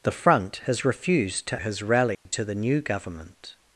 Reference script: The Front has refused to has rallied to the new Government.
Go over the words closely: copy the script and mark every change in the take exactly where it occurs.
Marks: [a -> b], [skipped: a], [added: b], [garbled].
The Front has refused to has rallied to the new Government.